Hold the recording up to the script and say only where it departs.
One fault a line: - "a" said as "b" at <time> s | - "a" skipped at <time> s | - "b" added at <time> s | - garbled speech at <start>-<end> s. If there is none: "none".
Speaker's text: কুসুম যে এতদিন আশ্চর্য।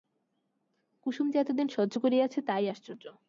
- "সহ্য করিয়াছে তাই" added at 1.7 s